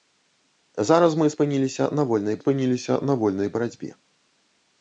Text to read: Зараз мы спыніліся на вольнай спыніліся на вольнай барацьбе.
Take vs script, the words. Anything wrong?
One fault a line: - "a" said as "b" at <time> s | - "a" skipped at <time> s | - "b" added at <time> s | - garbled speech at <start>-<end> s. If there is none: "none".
none